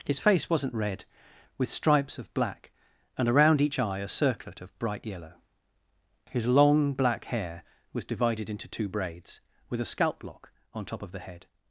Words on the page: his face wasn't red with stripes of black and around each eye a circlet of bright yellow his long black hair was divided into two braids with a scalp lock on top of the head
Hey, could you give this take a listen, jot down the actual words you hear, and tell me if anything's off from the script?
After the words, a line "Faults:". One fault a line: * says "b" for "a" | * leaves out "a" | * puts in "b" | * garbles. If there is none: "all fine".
his face wasn't red with stripes of black and around each eye a circlet of bright yellow his long black hair was divided into two braids with a scalp lock on top of the head
Faults:
all fine